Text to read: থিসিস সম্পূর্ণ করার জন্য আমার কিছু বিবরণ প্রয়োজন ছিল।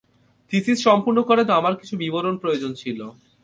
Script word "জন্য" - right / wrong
wrong